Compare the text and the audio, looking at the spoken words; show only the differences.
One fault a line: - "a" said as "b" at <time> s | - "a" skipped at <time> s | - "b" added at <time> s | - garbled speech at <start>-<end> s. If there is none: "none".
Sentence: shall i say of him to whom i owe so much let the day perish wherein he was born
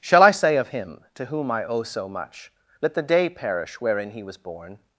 none